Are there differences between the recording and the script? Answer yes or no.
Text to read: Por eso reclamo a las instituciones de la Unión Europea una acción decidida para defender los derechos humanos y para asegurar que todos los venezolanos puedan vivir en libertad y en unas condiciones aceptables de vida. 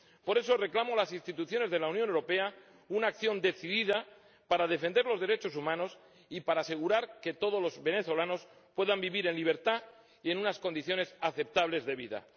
no